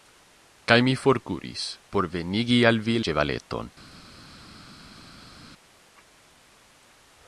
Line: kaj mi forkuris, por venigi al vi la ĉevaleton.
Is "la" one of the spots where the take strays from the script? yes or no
yes